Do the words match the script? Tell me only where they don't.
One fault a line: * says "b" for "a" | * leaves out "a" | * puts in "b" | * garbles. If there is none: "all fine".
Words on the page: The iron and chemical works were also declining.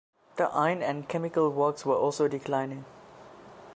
all fine